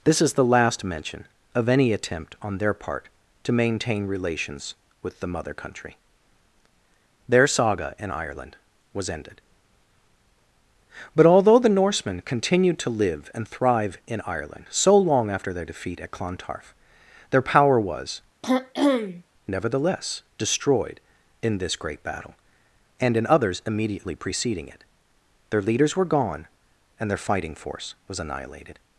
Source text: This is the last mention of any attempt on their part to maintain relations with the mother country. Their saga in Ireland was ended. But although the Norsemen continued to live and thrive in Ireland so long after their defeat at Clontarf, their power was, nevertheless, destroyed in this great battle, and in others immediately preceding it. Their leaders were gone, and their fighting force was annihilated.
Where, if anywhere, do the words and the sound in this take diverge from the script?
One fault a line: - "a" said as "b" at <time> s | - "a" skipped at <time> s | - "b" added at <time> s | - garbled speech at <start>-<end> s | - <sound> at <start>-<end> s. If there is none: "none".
- throat clearing at 18.4-19.2 s